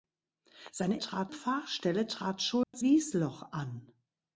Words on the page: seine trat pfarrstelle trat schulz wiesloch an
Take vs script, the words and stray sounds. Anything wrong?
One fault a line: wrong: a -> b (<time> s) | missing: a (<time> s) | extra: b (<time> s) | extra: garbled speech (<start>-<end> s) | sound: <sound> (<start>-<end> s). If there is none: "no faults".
sound: dropout (2.6-2.7 s)